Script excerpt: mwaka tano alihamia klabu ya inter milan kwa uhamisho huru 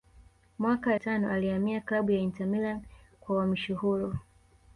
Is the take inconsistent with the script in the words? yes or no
no